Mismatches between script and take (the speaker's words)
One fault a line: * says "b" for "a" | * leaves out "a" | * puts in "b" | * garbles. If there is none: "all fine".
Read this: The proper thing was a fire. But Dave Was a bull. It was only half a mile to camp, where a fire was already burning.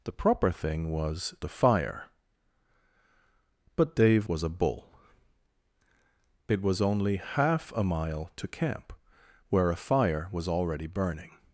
all fine